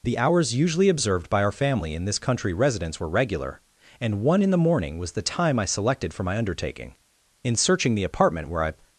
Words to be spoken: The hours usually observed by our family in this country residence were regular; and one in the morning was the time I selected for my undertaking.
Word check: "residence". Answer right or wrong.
right